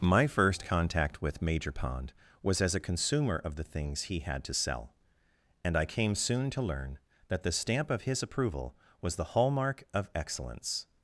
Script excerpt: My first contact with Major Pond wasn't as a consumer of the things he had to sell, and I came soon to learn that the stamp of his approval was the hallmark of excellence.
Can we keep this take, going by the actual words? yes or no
no